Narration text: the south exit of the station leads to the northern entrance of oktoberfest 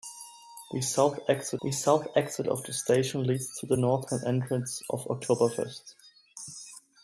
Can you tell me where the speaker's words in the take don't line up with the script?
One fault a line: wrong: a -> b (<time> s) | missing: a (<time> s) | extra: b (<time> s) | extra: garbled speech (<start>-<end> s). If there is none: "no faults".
extra: the south exit (1.6 s)